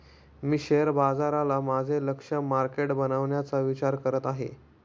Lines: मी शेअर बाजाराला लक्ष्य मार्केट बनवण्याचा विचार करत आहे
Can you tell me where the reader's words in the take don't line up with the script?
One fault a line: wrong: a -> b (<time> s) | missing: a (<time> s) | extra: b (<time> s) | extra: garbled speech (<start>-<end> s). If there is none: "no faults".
extra: माझे (1.6 s)